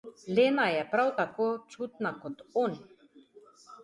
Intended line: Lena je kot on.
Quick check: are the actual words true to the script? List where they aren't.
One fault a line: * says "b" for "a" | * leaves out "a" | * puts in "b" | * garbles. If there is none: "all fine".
* puts in "prav tako čutna"